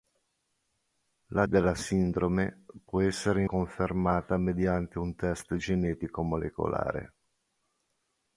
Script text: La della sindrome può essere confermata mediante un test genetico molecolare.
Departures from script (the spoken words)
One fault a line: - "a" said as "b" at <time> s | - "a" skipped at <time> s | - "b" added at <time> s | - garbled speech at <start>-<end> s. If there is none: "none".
none